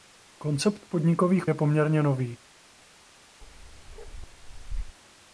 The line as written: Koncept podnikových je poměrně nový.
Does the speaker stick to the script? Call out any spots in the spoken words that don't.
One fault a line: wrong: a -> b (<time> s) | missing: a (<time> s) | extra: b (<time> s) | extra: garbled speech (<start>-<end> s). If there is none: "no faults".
no faults